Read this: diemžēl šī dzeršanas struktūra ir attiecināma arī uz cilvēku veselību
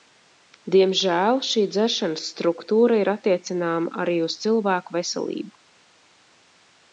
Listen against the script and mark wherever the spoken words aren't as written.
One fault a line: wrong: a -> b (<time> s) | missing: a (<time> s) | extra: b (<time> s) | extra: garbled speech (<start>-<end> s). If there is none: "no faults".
no faults